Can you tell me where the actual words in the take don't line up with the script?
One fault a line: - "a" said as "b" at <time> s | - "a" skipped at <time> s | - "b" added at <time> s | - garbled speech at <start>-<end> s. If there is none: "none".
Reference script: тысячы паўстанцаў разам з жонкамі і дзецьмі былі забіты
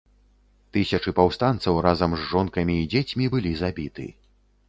none